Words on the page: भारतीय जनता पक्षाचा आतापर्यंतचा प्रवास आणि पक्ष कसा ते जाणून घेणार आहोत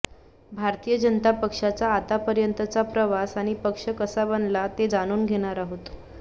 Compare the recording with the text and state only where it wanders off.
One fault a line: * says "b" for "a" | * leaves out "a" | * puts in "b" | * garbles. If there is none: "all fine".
* puts in "बनला"